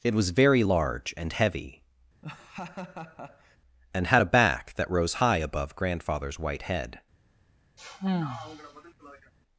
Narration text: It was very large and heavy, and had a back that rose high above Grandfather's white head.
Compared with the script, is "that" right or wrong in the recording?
right